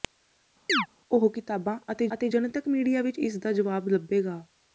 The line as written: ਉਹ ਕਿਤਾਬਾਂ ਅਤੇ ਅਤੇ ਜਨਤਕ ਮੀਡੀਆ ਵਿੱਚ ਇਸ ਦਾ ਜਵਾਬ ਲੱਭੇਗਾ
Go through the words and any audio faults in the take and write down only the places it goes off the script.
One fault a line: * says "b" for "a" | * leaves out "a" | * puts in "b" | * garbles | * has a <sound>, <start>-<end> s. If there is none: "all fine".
* has a chirp, 0.7-0.9 s